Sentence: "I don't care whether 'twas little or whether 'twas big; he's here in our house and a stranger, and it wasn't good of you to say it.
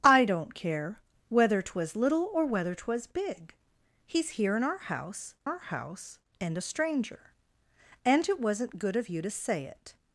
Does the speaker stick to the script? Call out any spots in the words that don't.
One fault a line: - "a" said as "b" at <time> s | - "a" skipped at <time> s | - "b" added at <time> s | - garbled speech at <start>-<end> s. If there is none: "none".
- "our house" added at 5.4 s